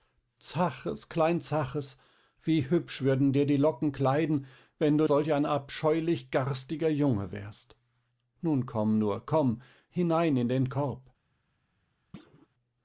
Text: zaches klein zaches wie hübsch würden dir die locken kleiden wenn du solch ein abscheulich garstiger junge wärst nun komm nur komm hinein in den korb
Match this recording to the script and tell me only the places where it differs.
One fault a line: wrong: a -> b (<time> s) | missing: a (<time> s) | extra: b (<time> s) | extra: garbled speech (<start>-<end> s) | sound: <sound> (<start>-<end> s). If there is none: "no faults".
sound: thud (12.1-12.5 s)